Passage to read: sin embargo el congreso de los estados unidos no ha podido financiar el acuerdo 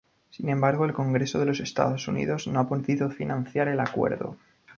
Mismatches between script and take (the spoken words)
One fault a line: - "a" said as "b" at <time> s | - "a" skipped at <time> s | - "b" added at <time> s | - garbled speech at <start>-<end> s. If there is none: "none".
none